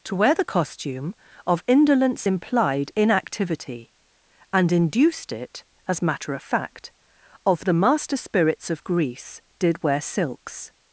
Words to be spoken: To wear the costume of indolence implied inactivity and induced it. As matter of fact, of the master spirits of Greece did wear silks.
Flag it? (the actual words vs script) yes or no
no